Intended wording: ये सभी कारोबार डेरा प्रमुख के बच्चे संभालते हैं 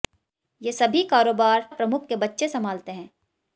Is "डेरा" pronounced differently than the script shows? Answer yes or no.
yes